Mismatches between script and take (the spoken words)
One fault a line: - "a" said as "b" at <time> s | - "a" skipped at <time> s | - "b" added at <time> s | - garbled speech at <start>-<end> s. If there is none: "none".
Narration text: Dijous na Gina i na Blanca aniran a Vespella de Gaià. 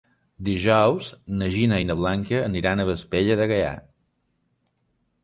none